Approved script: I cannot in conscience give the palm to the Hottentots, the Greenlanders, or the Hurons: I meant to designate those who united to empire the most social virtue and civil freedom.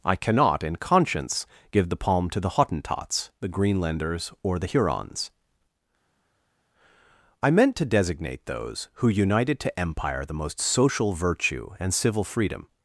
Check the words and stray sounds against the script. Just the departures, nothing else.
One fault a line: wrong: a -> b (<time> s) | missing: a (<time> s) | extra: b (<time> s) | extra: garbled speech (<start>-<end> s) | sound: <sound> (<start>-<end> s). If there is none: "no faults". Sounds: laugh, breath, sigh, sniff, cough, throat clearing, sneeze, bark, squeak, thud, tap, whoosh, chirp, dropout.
no faults